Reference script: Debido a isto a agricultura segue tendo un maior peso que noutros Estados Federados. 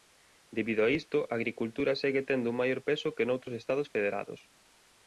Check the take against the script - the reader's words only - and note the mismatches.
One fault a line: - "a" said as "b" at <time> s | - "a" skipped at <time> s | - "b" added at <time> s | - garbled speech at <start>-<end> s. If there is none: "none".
none